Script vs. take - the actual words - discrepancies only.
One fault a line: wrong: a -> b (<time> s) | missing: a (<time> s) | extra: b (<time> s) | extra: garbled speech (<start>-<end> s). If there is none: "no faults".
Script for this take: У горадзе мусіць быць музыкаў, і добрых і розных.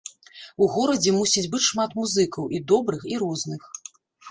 extra: шмат (1.7 s)